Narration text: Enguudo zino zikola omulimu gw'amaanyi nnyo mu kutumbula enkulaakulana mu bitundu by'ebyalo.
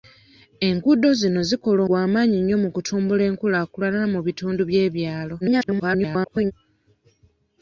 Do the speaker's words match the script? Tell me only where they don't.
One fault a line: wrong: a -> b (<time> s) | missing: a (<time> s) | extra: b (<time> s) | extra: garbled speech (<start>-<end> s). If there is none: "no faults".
missing: omulimu (1.8 s)
extra: garbled speech (5.4-6.5 s)